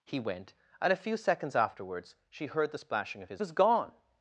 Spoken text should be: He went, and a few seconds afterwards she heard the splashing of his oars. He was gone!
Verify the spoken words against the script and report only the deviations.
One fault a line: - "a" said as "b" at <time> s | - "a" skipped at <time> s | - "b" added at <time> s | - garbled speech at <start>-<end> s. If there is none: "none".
- "oars He" skipped at 3.4 s